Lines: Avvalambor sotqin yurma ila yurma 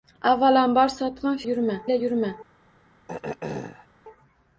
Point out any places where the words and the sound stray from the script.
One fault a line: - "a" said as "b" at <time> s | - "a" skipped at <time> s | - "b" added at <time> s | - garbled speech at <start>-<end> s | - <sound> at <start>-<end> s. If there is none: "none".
- throat clearing at 3.1-3.9 s